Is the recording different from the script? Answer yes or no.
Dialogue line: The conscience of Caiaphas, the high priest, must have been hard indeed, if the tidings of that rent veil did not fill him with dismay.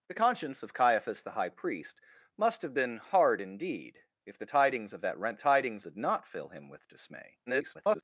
yes